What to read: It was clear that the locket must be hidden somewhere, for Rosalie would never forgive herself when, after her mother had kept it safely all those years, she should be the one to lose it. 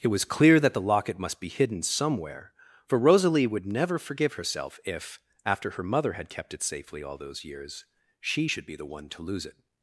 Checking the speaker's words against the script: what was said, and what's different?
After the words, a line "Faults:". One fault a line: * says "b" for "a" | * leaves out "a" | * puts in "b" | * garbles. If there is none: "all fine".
It was clear that the locket must be hidden somewhere, for Rosalie would never forgive herself if, after her mother had kept it safely all those years, she should be the one to lose it.
Faults:
* says "if" for "when"